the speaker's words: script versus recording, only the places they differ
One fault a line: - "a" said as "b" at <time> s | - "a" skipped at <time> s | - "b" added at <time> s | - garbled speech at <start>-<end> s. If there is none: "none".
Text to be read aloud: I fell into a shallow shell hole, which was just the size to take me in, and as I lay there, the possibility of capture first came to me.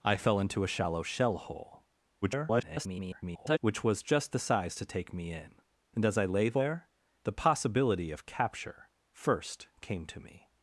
- garbled speech at 2.2-3.6 s